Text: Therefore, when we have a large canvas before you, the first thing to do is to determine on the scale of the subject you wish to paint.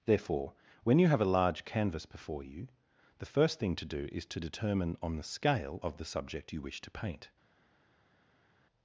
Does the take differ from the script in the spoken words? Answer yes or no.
yes